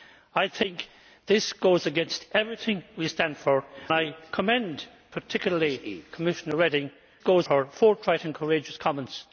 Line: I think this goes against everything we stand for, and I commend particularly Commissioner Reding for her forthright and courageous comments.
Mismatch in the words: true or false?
true